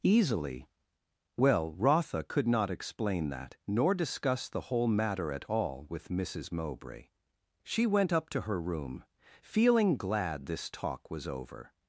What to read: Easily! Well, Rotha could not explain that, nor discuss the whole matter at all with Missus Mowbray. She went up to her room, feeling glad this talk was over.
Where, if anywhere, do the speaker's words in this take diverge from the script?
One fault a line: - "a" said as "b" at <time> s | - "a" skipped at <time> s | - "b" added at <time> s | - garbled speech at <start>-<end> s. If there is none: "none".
none